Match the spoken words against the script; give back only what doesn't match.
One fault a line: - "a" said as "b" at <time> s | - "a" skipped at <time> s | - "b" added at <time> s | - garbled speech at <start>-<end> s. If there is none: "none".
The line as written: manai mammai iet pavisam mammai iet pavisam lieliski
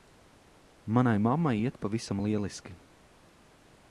- "mammai iet pavisam" skipped at 2.2 s